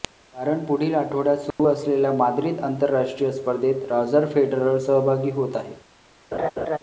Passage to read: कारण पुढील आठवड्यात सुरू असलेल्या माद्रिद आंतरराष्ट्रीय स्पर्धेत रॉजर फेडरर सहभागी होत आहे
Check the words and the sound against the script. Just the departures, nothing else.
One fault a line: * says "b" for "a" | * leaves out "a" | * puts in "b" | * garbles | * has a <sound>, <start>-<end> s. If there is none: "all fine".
* has a dropout, 1.5-1.6 s
* has a laugh, 6.3-6.8 s